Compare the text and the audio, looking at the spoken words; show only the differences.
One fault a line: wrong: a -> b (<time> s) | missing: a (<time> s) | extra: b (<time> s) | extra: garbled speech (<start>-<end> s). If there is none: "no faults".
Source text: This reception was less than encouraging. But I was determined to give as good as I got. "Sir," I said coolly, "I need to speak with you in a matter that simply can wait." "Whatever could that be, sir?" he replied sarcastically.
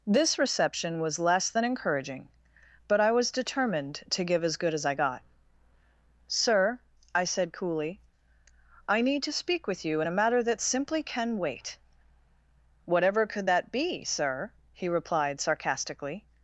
no faults